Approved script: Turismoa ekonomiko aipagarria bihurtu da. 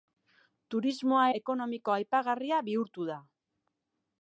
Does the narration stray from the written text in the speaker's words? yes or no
no